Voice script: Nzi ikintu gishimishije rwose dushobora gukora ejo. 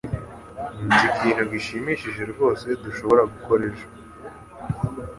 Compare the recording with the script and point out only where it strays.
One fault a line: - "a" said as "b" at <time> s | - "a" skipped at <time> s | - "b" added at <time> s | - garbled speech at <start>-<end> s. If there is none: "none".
none